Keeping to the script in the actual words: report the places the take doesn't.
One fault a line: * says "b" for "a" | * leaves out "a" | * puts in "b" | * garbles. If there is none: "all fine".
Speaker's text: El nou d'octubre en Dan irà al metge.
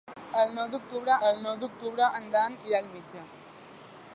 * puts in "el nou d'octubre"